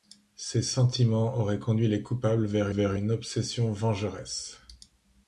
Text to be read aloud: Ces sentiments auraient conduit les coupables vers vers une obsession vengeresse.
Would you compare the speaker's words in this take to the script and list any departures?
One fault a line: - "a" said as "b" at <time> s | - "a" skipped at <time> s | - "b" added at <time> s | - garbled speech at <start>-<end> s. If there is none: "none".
none